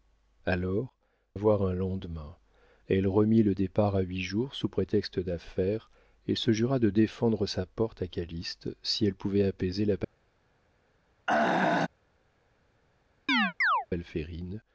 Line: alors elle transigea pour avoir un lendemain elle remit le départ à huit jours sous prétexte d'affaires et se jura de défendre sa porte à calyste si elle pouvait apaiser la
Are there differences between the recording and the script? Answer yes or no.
yes